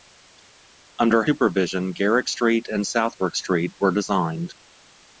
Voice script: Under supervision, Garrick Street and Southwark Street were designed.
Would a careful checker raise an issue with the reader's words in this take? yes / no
no